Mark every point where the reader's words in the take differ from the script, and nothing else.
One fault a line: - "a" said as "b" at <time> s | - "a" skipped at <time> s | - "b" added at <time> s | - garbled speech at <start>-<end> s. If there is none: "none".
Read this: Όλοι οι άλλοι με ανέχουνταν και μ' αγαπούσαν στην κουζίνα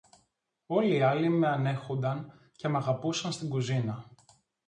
none